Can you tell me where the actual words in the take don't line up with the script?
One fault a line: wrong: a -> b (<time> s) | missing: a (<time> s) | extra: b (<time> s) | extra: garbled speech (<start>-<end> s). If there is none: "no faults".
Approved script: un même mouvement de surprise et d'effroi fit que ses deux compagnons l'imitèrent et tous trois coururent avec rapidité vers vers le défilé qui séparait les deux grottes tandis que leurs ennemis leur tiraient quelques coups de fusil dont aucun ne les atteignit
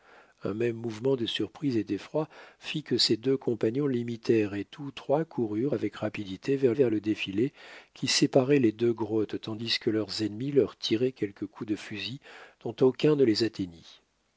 no faults